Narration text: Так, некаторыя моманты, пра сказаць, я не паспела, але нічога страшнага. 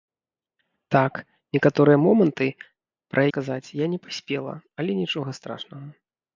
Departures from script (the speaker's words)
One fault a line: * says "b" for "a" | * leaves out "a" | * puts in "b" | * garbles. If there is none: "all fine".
all fine